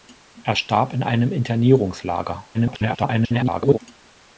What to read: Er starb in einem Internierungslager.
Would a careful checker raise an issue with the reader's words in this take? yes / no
yes